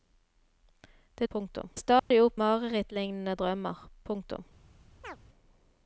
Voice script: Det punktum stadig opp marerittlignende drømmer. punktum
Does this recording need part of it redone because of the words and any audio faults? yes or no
yes